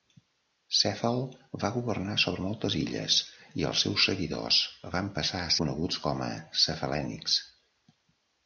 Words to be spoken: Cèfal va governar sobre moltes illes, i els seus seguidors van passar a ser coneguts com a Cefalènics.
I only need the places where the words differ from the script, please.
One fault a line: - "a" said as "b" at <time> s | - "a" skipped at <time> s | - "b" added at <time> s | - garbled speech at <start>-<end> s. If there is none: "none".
- "ser" skipped at 5.5 s